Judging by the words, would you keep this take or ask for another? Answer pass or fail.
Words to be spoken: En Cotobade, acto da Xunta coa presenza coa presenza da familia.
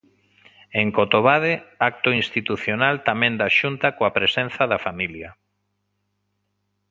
fail